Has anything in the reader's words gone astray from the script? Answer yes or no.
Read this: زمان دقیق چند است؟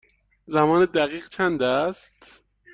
no